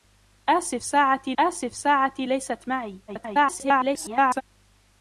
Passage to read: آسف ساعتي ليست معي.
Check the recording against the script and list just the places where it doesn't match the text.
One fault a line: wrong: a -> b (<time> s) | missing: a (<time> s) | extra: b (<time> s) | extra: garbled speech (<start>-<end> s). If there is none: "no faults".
extra: آسف ساعتي (1.4 s)
extra: garbled speech (3.1-4.4 s)